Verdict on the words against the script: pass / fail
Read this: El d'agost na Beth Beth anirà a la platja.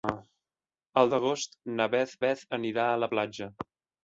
pass